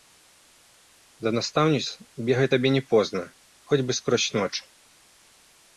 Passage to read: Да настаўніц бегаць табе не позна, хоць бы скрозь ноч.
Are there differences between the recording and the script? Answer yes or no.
no